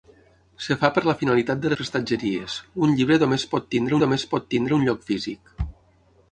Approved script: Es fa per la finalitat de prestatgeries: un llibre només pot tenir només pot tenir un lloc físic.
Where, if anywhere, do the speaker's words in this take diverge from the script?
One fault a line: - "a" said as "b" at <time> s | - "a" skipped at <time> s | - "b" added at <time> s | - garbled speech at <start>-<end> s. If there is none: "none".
none